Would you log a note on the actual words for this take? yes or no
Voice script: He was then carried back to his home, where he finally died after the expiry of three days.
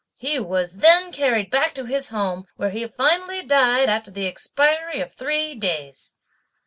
no